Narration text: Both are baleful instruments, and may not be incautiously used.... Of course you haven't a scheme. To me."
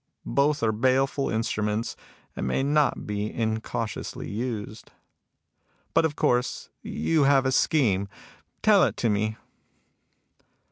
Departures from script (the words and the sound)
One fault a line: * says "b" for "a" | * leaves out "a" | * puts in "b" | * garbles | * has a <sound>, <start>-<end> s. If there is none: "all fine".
* puts in "But"
* says "have" for "haven't"
* puts in "Tell it"